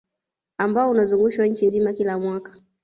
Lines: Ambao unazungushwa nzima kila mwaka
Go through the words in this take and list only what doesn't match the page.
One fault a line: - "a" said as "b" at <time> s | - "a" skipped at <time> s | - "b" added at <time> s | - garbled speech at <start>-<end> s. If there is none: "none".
- "nchi" added at 1.5 s